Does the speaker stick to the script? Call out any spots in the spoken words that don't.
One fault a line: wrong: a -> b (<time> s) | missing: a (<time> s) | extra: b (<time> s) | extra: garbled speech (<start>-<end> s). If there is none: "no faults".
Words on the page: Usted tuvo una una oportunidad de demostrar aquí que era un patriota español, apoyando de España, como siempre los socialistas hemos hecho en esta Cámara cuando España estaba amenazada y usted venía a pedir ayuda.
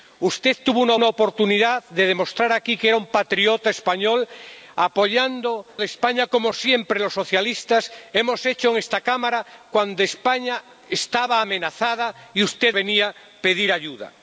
no faults